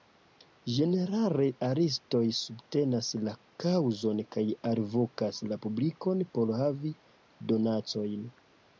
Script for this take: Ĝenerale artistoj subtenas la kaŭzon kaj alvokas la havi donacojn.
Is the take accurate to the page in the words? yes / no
no